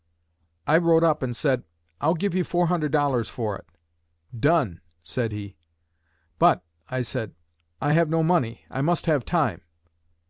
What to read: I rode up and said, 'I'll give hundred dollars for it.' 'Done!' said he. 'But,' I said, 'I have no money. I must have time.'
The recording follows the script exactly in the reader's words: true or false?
false